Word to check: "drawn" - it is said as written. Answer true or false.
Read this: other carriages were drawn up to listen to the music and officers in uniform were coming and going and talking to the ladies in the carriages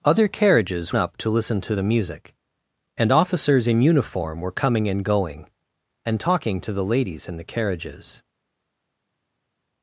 false